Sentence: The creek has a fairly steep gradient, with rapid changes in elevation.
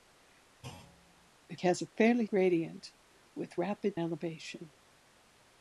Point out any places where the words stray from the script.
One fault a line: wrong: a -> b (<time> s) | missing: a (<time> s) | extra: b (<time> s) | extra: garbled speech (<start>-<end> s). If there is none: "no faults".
missing: creek (1.6 s)
missing: steep (2.3 s)
missing: changes in (4.0 s)